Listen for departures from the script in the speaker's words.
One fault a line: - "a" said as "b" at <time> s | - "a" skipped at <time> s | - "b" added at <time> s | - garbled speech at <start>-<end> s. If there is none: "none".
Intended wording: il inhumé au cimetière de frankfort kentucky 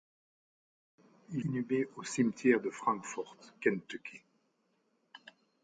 none